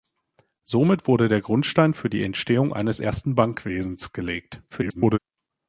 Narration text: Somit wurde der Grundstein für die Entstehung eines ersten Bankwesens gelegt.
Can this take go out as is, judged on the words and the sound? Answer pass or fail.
fail